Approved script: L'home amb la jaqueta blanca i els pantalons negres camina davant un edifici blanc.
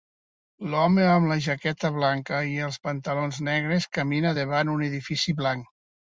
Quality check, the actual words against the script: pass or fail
pass